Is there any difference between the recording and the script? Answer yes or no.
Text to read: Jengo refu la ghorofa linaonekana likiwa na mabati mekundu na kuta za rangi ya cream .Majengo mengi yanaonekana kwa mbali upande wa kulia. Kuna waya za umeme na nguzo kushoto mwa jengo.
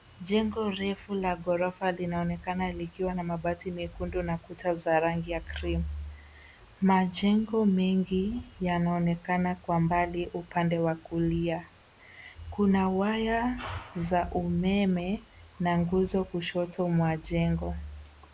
no